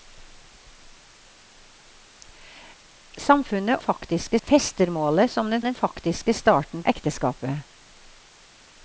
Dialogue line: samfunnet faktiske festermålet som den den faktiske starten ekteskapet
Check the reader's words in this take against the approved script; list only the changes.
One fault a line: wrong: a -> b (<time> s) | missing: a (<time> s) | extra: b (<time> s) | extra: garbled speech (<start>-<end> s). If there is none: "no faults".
no faults